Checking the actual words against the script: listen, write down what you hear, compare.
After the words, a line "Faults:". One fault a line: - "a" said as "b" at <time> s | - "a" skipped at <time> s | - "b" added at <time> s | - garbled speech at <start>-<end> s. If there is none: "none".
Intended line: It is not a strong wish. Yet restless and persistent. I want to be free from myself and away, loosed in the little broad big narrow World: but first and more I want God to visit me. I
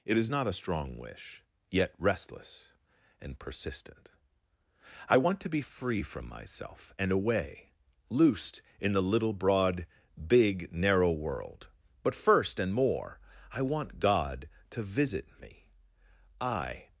It is not a strong wish. Yet restless and persistent. I want to be free from myself and away, loosed in the little broad big narrow World: but first and more I want God to visit me. I
Faults:
none